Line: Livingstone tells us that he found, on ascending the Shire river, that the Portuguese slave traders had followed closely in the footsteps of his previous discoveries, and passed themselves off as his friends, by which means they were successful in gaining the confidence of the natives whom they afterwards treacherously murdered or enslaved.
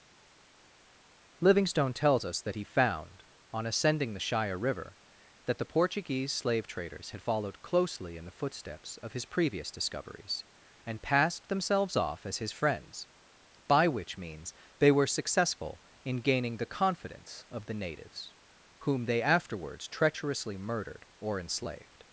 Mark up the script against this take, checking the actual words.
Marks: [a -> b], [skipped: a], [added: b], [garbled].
Livingstone tells us that he found, on ascending the Shire river, that the Portuguese slave traders had followed closely in the footsteps of his previous discoveries, and passed themselves off as his friends, by which means they were successful in gaining the confidence of the natives whom they afterwards treacherously murdered or enslaved.